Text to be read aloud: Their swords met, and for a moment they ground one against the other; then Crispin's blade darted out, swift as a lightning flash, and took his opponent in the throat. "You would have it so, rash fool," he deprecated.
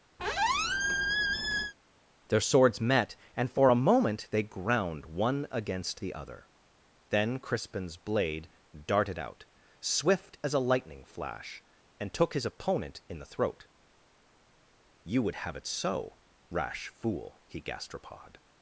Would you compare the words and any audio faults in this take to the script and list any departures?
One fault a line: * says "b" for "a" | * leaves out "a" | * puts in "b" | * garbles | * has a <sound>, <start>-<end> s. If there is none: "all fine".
* has a squeak, 0.2-1.7 s
* says "gastropod" for "deprecated"